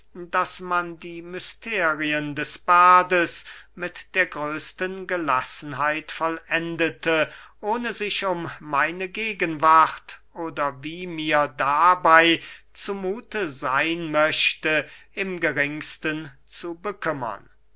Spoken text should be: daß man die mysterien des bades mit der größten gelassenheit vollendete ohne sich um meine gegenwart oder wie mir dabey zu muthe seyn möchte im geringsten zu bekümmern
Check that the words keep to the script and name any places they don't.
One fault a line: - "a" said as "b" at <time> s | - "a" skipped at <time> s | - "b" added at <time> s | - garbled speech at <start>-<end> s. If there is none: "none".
none